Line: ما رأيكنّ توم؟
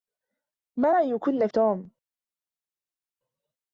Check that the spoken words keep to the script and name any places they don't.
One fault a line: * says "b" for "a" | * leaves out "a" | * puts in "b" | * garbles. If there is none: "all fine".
all fine